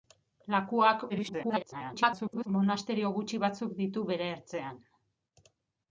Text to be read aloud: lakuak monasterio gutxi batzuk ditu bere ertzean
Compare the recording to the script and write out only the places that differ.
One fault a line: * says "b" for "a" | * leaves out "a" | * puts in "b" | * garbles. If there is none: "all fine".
* garbles